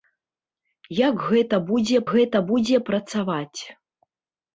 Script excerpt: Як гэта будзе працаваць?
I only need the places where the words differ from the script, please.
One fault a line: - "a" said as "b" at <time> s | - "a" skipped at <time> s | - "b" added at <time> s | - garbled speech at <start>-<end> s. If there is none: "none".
- "гэта будзе" added at 2.1 s